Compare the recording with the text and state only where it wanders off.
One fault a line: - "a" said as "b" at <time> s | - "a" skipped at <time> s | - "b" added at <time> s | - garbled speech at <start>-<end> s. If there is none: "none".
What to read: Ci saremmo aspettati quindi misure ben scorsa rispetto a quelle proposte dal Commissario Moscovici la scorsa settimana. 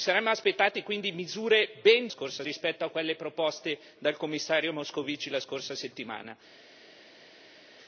none